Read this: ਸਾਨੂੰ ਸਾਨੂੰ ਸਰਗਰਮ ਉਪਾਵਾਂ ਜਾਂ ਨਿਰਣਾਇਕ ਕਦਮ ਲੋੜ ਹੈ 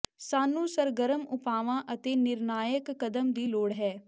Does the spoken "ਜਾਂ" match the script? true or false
false